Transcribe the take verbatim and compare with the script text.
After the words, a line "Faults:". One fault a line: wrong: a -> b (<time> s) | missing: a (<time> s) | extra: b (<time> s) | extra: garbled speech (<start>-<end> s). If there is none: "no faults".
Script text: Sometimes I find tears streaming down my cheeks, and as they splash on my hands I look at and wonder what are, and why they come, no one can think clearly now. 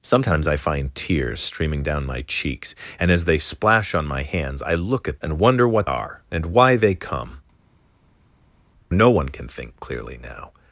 Sometimes I find tears streaming down my cheeks, and as they splash on my hands I look at and wonder what are, and why they come, no one can think clearly now.
Faults:
no faults